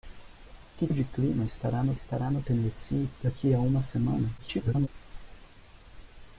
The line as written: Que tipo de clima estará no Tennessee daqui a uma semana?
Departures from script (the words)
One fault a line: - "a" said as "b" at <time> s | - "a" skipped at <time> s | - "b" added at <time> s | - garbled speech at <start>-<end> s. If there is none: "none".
- "tipo" skipped at 0.9 s
- "estará no" added at 1.9 s
- garbled speech at 4.4-4.9 s